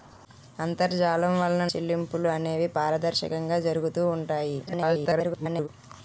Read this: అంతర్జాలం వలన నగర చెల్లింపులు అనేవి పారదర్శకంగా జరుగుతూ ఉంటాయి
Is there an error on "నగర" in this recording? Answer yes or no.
yes